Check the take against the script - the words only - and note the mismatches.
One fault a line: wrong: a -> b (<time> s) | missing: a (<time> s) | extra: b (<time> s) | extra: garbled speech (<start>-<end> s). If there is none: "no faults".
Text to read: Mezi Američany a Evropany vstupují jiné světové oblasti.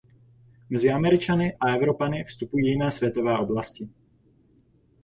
no faults